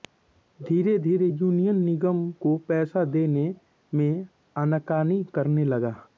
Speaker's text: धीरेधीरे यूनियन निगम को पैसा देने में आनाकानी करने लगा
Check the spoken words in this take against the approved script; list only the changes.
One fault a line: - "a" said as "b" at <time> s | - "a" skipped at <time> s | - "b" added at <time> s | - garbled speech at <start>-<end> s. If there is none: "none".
none